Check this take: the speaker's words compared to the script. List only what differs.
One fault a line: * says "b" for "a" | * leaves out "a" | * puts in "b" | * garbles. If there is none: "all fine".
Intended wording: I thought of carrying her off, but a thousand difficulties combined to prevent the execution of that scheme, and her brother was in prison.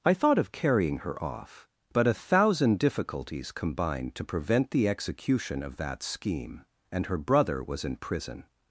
all fine